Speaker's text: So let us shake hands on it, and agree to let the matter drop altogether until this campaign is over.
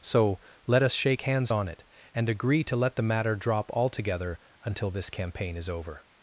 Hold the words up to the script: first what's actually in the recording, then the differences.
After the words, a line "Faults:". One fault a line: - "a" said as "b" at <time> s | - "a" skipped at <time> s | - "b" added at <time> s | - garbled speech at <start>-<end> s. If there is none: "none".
So let us shake hands on it, and agree to let the matter drop altogether until this campaign is over.
Faults:
none